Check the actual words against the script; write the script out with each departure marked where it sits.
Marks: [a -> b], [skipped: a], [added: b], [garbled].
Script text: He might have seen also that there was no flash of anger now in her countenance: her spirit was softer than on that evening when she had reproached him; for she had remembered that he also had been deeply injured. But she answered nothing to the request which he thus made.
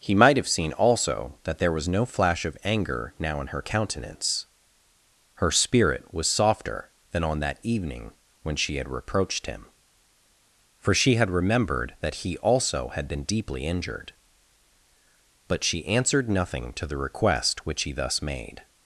He might have seen also that there was no flash of anger now in her countenance: her spirit was softer than on that evening when she had reproached him; for she had remembered that he also had been deeply injured. But she answered nothing to the request which he thus made.